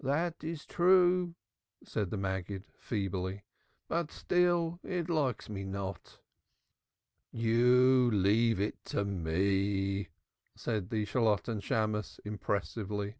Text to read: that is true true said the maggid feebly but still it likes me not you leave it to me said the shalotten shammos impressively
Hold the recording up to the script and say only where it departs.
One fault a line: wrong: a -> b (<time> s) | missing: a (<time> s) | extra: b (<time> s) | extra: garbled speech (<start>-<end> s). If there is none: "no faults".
missing: true (1.3 s)